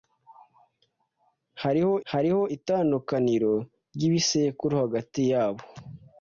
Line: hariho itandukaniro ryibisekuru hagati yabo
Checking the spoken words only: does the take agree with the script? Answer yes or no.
no